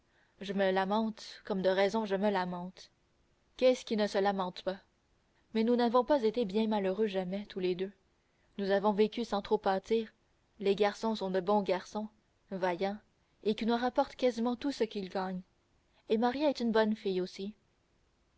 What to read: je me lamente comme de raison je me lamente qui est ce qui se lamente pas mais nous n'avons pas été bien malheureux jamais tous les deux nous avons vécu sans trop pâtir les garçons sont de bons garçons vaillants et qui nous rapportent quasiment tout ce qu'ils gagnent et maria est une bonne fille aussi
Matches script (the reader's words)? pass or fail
fail